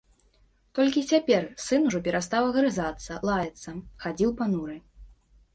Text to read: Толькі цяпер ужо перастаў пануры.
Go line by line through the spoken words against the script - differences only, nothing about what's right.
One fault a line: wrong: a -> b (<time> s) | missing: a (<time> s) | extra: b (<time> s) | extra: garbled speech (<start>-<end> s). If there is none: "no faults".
extra: сын (1.6 s)
extra: агрызацца лаяцца хадзіў (2.5 s)